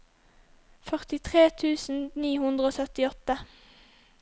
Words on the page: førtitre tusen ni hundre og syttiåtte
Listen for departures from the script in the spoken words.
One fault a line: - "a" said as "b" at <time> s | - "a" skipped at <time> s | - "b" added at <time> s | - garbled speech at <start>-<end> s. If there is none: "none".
none